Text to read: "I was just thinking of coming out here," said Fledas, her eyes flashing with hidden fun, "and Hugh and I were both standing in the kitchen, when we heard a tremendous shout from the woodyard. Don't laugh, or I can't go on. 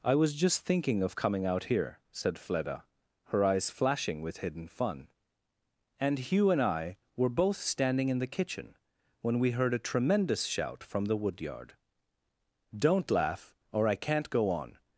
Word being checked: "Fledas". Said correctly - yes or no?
no